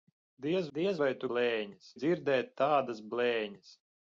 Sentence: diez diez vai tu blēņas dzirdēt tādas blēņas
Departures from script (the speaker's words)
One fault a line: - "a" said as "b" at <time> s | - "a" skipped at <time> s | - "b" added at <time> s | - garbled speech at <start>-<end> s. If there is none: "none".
none